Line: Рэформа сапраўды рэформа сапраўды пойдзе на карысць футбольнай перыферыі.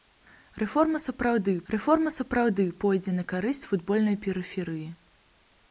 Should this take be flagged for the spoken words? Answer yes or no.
no